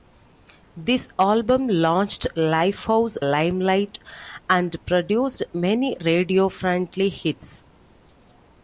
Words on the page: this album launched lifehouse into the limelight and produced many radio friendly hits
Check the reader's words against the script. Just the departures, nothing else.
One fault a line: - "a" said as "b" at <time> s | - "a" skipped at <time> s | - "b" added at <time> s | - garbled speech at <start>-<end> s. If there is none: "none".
- "into the" skipped at 3.2 s